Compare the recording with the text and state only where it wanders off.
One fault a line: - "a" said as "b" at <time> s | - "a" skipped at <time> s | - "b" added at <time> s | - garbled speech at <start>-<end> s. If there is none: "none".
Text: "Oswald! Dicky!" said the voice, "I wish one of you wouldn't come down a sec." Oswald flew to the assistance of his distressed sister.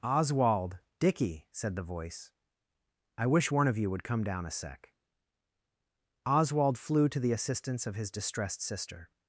- "wouldn't" said as "would" at 3.9 s